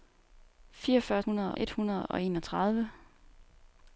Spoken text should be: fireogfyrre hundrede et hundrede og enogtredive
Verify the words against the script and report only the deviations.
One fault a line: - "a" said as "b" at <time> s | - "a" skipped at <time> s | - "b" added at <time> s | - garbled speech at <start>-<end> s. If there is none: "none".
none